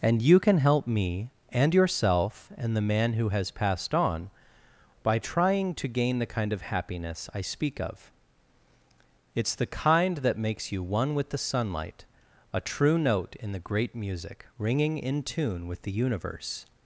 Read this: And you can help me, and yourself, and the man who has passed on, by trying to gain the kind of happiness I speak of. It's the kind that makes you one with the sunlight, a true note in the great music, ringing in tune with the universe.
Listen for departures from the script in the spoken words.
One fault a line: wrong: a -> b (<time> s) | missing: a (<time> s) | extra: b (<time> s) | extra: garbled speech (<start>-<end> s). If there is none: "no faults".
no faults